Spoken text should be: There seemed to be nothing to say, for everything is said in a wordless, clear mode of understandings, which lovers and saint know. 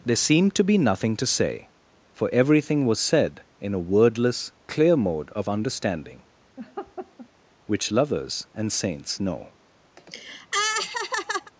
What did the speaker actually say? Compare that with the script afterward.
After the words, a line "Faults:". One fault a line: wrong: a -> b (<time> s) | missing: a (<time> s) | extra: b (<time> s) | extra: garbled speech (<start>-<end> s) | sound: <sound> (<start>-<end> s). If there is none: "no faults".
There seemed to be nothing to say, for everything was said in a wordless, clear mode of understanding, which lovers and saints know.
Faults:
wrong: is -> was (2.9 s)
wrong: understandings -> understanding (5.5 s)
sound: laugh (6.6-7.3 s)
wrong: saint -> saints (8.7 s)
sound: laugh (10.0-11.5 s)